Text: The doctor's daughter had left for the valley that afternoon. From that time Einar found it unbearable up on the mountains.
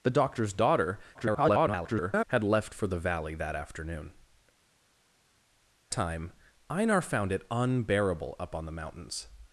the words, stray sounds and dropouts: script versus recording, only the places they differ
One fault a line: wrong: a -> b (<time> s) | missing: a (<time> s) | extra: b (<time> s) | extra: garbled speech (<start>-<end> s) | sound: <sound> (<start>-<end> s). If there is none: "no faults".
extra: garbled speech (1.1-2.2 s)
missing: From that (4.1 s)